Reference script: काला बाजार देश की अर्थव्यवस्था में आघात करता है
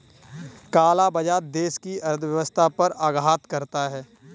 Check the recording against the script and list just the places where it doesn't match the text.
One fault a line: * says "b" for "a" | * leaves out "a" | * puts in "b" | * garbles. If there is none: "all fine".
* says "पर" for "में"